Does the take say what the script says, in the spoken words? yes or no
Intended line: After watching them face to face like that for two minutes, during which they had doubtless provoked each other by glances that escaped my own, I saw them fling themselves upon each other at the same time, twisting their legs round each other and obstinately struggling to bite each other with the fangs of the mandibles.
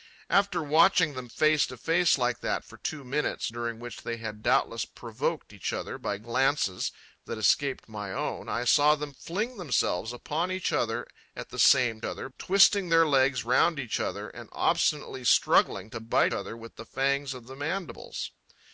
no